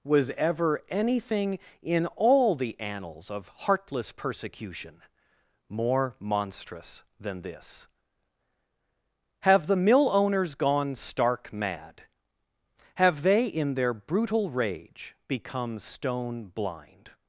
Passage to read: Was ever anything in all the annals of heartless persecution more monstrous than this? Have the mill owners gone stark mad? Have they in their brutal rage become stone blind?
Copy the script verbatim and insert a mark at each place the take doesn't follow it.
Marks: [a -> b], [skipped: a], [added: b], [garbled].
Was ever anything in all the annals of heartless persecution more monstrous than this? Have the mill owners gone stark mad? Have they in their brutal rage become stone blind?